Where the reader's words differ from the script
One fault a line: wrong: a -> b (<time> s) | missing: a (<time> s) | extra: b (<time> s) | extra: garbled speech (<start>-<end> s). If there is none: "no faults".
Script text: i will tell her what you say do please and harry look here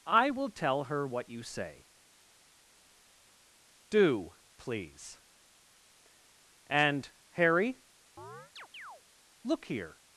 no faults